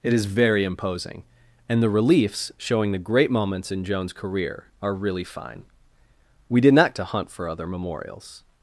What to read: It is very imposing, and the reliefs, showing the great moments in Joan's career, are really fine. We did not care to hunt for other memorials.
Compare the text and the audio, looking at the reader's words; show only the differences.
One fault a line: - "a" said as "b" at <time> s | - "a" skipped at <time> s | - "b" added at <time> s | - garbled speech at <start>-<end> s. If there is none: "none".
- "care" skipped at 7.0 s